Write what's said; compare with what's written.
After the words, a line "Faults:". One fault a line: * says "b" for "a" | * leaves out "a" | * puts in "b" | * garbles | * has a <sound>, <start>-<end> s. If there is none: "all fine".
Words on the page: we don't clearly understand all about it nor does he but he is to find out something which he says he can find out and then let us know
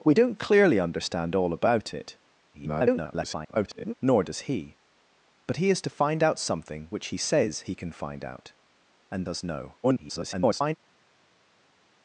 we don't clearly understand all about it [garbled] nor does he but he is to find out something which he says he can find out and us know [garbled]
Faults:
* garbles
* leaves out "then let"
* garbles